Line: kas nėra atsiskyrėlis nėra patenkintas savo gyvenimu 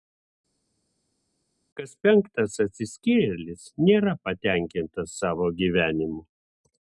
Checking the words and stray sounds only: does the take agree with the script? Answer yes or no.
no